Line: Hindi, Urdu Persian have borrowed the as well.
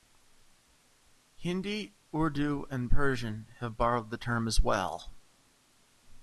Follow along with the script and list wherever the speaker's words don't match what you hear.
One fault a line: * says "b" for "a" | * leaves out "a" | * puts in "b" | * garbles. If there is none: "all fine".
* puts in "and"
* puts in "term"